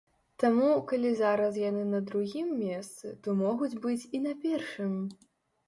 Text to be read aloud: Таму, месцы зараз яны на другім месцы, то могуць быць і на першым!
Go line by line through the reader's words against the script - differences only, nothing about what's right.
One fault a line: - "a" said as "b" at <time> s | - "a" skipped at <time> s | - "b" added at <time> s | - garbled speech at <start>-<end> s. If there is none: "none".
- "месцы" said as "калі" at 0.9 s